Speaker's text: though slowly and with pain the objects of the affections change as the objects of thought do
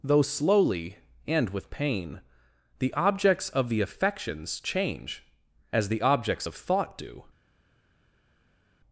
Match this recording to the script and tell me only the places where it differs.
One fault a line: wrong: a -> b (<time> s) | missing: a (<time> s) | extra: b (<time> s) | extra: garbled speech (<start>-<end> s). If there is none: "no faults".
no faults